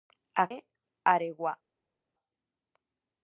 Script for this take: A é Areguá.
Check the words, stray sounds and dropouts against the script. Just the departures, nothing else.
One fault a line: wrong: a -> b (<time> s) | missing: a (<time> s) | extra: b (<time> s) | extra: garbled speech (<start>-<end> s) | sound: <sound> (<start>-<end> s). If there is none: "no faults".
no faults